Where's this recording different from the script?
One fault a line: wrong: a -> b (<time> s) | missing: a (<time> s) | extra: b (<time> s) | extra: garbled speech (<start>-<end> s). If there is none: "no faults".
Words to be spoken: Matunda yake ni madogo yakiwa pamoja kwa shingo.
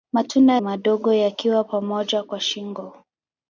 missing: yake ni (0.5 s)